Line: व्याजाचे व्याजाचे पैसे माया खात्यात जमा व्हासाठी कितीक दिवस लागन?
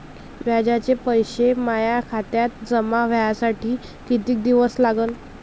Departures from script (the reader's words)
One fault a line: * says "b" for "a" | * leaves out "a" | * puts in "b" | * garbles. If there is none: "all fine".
* leaves out "व्याजाचे"